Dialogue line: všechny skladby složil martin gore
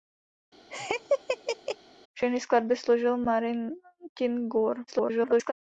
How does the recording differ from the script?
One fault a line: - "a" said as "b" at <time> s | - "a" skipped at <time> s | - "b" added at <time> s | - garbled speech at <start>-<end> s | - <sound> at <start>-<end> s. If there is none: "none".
- laugh at 0.7-1.8 s
- garbled speech at 4.9-5.5 s